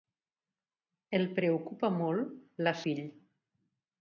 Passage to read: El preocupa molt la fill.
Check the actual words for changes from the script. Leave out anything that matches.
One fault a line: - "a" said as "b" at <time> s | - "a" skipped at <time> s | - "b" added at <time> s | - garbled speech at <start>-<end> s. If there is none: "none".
none